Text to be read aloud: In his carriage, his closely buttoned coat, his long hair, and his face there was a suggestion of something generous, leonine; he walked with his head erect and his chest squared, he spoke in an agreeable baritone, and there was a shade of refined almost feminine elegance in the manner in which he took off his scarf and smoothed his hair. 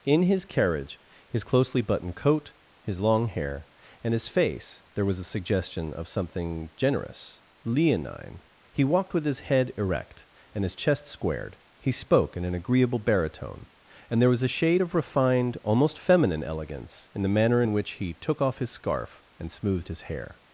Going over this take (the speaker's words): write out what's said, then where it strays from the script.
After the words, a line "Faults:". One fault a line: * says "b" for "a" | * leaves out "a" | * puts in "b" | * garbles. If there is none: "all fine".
In his carriage, his closely buttoned coat, his long hair, and his face there was a suggestion of something generous, leonine; he walked with his head erect and his chest squared, he spoke in an agreeable baritone, and there was a shade of refined almost feminine elegance in the manner in which he took off his scarf and smoothed his hair.
Faults:
all fine